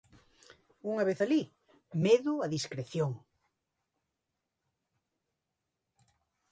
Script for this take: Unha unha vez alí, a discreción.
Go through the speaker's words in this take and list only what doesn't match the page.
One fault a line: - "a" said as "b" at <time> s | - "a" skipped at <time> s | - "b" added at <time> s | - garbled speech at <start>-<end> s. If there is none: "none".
- "unha" skipped at 1.0 s
- "medo" added at 2.1 s